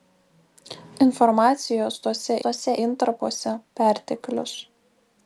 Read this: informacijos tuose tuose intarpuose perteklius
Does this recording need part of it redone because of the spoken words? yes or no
no